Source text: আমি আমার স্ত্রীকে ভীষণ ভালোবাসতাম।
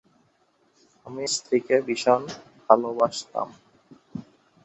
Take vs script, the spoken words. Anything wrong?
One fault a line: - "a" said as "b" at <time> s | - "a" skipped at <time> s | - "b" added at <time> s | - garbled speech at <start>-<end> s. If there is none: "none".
- "আমার" skipped at 1.2 s